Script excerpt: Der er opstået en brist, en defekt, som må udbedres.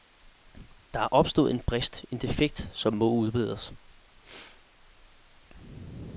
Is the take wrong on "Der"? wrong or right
right